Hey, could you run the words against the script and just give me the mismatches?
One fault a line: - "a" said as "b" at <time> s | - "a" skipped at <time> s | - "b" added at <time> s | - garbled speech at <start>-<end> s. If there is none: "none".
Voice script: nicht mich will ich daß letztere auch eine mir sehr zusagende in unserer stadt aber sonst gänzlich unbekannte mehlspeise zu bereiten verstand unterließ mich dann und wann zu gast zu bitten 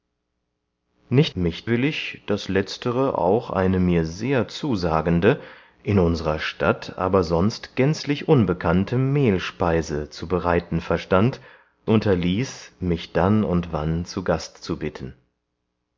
none